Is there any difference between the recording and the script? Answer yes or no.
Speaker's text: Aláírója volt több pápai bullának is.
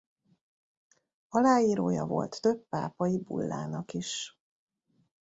no